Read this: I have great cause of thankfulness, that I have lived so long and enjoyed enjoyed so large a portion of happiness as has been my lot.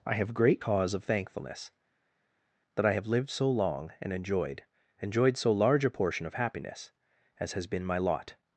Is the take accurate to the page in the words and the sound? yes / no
yes